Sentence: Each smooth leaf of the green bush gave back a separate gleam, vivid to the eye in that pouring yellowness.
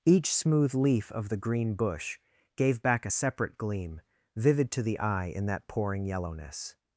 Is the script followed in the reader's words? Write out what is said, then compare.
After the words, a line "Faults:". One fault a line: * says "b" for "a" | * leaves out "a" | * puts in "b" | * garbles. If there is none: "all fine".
Each smooth leaf of the green bush gave back a separate gleam, vivid to the eye in that pouring yellowness.
Faults:
all fine